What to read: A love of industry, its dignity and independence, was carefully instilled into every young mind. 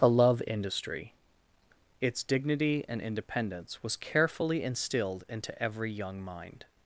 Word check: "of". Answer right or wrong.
wrong